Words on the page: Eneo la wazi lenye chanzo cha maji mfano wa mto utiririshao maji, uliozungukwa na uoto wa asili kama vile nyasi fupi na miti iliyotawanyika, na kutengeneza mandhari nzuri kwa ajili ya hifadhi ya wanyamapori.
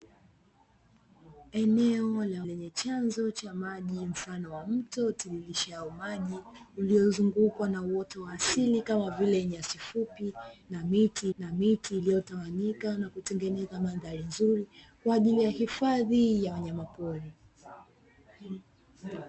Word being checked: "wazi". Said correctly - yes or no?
no